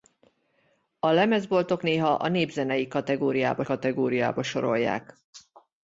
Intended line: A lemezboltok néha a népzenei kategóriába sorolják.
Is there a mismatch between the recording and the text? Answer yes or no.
yes